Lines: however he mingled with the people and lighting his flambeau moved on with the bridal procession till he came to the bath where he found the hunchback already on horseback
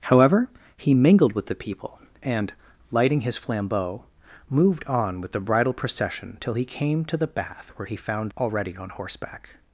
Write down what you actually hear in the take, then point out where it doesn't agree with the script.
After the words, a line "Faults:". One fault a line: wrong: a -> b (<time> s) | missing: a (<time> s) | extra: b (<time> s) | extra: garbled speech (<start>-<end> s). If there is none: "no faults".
however he mingled with the people and lighting his flambeau moved on with the bridal procession till he came to the bath where he found already on horseback
Faults:
missing: the hunchback (8.3 s)